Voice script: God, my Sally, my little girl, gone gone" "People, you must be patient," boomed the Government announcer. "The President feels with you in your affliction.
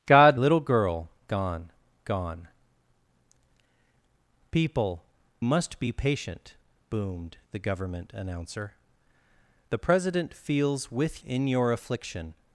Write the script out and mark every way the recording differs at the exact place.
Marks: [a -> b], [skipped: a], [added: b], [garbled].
God, [skipped: my Sally, my] little girl, gone gone" "People, [skipped: you] must be patient," boomed the Government announcer. "The President feels with [skipped: you] in your affliction.